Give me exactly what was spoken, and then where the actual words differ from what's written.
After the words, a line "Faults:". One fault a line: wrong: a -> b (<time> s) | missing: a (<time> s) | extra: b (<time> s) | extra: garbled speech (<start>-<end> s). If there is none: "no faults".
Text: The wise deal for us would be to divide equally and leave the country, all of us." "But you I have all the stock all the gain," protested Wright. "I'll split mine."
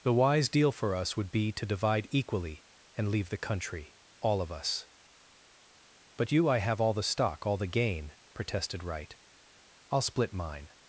The wise deal for us would be to divide equally and leave the country, all of us." "But you I have all the stock all the gain," protested Wright. "I'll split mine."
Faults:
no faults